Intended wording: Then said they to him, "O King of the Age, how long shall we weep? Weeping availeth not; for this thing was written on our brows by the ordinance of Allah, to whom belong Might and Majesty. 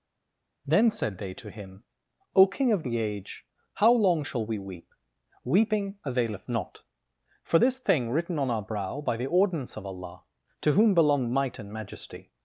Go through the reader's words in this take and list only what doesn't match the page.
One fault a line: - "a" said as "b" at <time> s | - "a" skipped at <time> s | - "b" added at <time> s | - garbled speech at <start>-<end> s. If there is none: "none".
- "was" skipped at 8.1 s
- "brows" said as "brow" at 8.6 s